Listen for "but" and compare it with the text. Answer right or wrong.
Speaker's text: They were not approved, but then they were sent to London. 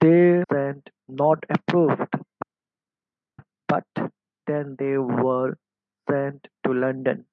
right